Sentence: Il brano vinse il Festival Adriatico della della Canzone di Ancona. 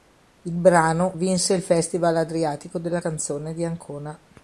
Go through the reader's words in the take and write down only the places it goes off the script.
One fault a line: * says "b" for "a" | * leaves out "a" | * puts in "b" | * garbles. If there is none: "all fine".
* leaves out "della"